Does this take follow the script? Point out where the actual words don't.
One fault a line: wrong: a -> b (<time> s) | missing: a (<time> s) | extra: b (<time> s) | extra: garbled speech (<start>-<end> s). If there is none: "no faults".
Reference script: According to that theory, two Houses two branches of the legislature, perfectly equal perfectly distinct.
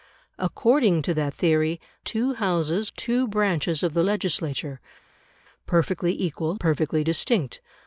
no faults